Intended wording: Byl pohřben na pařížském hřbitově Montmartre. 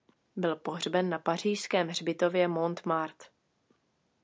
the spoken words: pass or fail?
pass